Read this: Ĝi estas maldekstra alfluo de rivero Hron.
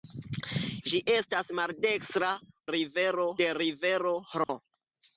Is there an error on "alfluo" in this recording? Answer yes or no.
yes